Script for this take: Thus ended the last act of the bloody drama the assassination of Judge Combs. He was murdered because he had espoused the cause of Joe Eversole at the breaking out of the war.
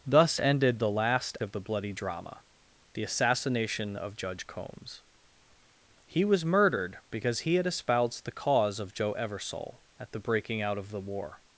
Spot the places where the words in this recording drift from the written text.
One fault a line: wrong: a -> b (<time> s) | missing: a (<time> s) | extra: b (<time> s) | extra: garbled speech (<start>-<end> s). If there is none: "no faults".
missing: act (1.4 s)